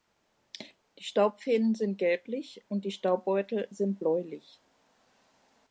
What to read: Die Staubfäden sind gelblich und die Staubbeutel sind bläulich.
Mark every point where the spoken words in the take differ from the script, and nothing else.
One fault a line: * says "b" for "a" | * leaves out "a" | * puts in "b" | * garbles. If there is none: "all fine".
all fine